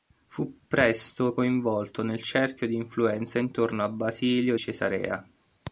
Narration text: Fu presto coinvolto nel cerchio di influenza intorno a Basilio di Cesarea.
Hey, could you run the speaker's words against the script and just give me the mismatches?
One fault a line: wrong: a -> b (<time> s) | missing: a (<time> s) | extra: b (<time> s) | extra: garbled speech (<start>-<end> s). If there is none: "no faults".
missing: di (4.6 s)